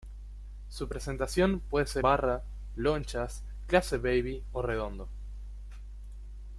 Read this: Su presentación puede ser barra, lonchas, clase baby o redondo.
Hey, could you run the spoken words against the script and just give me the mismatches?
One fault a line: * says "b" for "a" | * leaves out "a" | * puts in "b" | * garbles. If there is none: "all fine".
all fine